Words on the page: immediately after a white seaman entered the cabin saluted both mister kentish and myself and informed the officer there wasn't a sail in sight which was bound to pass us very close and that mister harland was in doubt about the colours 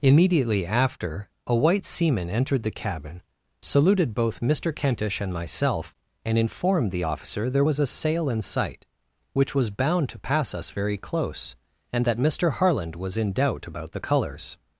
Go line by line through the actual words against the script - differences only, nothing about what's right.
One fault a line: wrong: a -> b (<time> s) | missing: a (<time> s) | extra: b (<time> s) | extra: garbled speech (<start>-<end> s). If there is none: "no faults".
wrong: wasn't -> was (7.6 s)